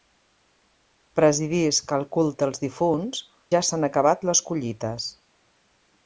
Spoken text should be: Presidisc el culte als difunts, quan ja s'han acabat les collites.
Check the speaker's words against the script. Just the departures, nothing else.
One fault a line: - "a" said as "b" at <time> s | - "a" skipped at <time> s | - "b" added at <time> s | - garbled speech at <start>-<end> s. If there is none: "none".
- "quan" skipped at 3.2 s